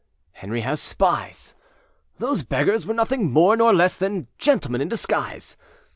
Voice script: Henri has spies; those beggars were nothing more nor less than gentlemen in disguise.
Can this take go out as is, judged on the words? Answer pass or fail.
pass